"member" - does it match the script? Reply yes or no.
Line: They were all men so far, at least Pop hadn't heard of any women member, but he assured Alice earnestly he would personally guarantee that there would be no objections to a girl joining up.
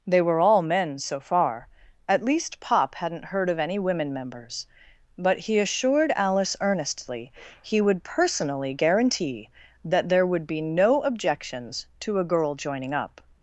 no